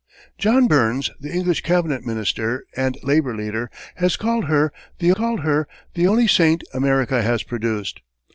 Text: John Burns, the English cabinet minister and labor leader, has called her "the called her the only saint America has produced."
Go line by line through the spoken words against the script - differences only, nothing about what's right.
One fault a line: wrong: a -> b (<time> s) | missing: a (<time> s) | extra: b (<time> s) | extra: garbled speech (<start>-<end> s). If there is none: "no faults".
no faults